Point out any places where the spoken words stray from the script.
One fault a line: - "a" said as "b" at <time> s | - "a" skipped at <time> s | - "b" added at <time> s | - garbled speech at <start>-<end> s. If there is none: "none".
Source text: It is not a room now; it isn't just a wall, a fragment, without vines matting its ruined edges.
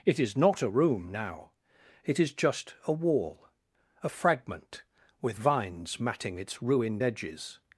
- "isn't" said as "is" at 2.2 s
- "without" said as "with" at 5.2 s